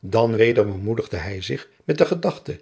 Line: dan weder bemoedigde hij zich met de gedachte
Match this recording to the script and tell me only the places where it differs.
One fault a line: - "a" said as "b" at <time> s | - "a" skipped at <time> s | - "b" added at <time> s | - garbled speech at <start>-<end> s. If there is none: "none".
none